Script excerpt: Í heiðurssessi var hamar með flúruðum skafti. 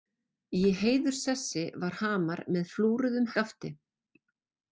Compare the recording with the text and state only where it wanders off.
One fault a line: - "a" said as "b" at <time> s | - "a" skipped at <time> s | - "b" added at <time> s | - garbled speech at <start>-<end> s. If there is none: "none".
none